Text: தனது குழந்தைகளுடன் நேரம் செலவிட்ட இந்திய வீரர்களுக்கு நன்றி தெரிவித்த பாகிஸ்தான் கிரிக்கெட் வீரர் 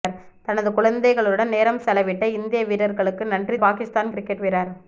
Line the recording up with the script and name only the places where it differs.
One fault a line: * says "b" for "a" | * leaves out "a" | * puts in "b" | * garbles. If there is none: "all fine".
* leaves out "தெரிவித்த"